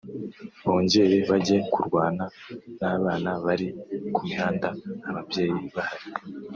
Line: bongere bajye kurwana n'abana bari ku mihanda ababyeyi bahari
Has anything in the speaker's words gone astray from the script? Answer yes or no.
no